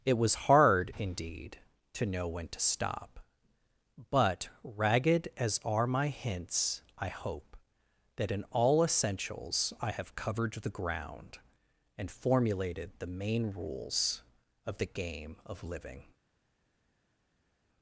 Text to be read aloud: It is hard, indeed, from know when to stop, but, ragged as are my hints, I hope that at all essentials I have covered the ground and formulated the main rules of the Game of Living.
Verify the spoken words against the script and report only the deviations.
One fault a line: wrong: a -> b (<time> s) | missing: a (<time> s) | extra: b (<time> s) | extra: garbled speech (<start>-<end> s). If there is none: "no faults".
wrong: is -> was (0.2 s)
wrong: from -> to (1.9 s)
wrong: at -> in (8.3 s)